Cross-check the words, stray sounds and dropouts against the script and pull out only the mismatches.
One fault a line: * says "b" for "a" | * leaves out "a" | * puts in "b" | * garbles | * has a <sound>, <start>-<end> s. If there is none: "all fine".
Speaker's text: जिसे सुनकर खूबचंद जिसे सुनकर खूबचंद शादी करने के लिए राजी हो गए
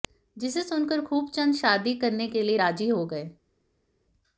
* leaves out "जिसे सुनकर खूबचंद"